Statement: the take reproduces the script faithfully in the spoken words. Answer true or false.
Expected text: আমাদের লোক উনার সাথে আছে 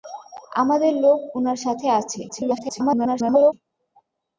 false